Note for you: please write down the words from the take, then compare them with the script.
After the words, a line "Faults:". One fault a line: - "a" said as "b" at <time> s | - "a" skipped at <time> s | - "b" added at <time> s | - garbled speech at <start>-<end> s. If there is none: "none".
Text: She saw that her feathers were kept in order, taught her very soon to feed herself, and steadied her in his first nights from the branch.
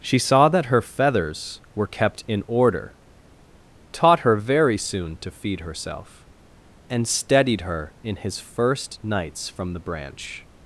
She saw that her feathers were kept in order, taught her very soon to feed herself, and steadied her in his first nights from the branch.
Faults:
none